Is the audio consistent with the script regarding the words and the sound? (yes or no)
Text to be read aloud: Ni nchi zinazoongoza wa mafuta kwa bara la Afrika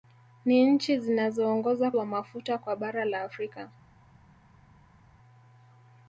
yes